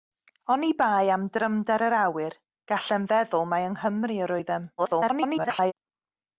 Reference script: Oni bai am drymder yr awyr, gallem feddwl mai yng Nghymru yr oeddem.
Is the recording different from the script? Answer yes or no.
yes